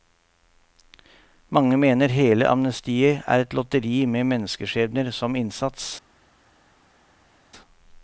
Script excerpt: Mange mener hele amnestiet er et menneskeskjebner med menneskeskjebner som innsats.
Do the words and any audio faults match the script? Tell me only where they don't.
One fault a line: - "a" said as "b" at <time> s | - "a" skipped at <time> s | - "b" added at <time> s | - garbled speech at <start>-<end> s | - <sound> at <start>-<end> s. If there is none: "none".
- "menneskeskjebner" said as "lotteri" at 3.5 s